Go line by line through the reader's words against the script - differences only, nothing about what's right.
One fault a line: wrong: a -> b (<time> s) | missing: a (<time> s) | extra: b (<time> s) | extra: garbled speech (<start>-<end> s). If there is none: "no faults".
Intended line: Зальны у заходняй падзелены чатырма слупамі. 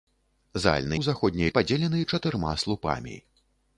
no faults